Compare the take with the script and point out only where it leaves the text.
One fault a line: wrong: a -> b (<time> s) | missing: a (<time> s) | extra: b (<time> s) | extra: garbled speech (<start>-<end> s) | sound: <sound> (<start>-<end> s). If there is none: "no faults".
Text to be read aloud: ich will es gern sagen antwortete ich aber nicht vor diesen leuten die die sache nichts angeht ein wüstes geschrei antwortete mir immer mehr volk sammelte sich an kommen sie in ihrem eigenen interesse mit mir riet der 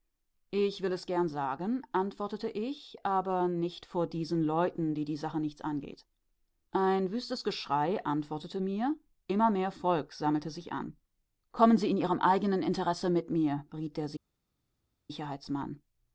no faults